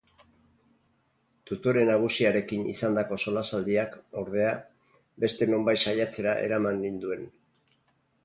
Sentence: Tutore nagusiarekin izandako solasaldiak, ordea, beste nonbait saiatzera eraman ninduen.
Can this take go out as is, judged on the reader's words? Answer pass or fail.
pass